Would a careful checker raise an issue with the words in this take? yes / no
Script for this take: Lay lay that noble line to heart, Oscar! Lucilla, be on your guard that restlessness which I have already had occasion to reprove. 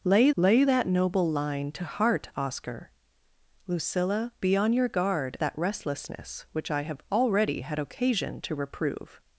no